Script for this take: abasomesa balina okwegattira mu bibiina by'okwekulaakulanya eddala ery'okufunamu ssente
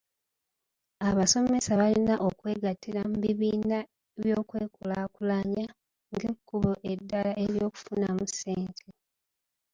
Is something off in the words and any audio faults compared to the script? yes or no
yes